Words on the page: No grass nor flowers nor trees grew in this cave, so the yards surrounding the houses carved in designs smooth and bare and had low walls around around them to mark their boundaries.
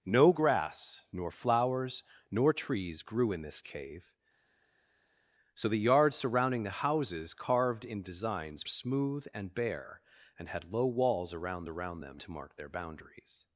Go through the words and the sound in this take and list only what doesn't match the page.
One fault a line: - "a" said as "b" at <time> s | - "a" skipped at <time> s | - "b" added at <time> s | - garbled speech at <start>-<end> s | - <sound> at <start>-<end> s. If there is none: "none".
none